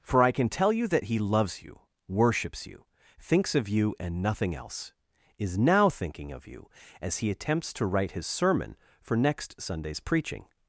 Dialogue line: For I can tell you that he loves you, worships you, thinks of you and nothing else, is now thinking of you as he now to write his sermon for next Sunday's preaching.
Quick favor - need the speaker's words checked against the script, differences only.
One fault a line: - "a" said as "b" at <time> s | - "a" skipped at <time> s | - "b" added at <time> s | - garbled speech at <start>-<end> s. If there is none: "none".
- "now" said as "attempts" at 7.3 s